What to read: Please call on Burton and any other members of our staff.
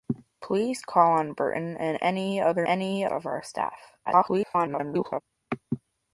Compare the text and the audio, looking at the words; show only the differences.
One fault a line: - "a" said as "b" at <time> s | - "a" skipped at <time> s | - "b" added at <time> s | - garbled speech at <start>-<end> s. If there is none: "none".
- "members" said as "any" at 2.7 s
- garbled speech at 4.1-5.2 s